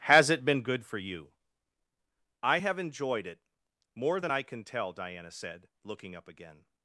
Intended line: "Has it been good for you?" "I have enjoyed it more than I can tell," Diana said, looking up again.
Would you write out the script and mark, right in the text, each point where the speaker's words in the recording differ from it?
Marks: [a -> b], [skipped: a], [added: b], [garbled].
"Has it been good for you?" "I have enjoyed it more than I can tell," Diana said, looking up again.